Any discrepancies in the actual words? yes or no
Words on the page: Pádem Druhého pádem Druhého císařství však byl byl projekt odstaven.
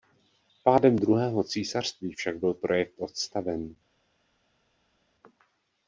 yes